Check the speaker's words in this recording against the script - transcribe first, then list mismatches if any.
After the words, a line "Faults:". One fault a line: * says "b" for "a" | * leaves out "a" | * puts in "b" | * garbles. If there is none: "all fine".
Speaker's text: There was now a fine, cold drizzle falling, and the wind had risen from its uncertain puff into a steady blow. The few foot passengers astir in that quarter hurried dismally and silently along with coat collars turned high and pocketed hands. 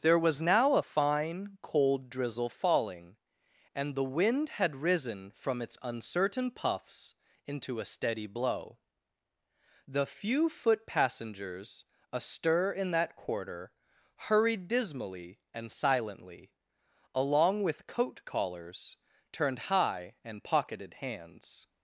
There was now a fine, cold drizzle falling, and the wind had risen from its uncertain puffs into a steady blow. The few foot passengers astir in that quarter hurried dismally and silently along with coat collars turned high and pocketed hands.
Faults:
* says "puffs" for "puff"